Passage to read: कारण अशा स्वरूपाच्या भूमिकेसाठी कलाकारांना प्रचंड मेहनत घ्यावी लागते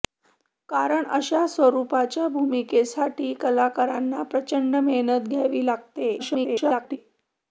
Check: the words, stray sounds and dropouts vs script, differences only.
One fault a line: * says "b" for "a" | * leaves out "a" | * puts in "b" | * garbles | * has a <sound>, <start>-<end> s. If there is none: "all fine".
* garbles